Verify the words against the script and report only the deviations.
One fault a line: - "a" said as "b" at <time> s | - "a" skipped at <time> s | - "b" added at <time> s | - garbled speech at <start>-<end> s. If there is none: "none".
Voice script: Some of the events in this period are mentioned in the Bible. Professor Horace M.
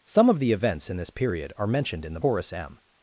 - "Bible Professor" skipped at 2.2 s